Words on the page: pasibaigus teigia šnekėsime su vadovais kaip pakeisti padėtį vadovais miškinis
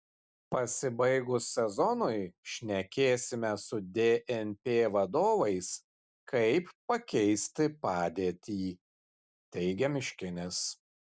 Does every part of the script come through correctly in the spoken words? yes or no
no